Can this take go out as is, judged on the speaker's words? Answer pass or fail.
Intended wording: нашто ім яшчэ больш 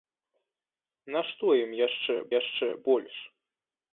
fail